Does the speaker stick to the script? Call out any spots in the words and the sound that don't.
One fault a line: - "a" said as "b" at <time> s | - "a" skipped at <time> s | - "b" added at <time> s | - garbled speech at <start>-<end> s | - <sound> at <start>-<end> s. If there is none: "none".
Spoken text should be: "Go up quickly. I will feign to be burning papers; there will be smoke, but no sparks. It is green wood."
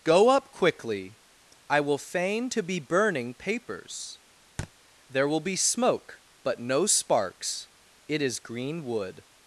- thud at 4.6-4.7 s